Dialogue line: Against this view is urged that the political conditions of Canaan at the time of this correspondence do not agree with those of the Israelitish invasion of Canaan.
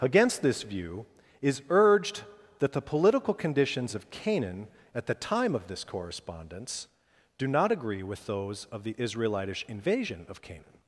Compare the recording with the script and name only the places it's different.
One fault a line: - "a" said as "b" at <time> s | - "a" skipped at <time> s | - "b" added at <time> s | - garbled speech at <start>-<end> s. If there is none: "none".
none